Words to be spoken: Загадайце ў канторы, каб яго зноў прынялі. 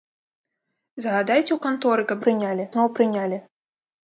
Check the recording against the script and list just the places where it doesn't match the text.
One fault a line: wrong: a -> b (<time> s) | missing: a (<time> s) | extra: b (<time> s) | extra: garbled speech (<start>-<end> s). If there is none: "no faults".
wrong: яго -> прынялі (2.3 s)